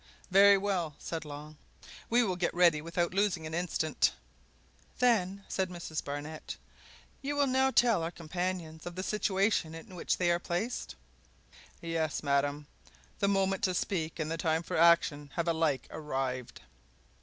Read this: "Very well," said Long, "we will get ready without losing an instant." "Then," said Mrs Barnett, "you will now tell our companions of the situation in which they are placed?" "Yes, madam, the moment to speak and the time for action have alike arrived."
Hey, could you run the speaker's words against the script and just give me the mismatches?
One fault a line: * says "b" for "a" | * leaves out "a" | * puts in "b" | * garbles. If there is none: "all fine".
all fine